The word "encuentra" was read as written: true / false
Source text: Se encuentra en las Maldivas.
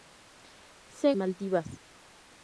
false